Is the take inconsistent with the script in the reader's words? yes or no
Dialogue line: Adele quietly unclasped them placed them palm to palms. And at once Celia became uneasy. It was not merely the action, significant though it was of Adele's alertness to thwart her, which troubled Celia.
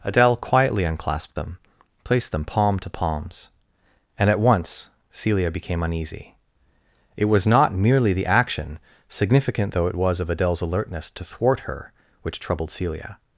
no